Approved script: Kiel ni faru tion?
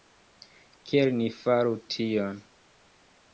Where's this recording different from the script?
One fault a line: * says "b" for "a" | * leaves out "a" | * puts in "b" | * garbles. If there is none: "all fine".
all fine